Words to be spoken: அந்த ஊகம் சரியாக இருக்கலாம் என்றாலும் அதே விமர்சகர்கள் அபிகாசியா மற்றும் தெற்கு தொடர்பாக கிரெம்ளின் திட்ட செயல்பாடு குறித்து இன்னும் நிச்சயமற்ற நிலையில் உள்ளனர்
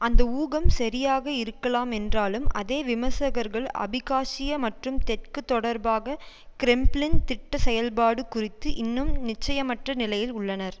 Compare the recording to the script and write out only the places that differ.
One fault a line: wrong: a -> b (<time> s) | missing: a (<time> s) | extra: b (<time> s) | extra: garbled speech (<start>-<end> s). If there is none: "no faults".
no faults